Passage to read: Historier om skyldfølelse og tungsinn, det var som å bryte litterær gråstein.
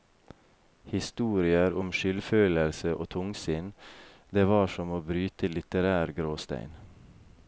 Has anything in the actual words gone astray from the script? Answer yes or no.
no